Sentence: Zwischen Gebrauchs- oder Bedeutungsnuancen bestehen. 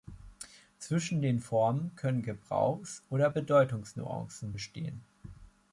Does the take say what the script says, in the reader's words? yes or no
no